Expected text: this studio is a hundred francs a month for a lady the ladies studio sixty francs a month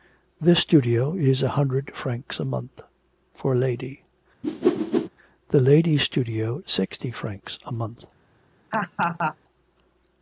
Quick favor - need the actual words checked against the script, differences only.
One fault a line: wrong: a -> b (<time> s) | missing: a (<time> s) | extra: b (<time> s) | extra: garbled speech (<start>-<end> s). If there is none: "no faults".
no faults